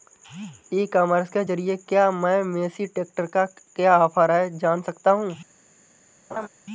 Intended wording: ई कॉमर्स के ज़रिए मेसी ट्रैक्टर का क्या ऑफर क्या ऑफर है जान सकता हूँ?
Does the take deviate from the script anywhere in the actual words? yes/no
yes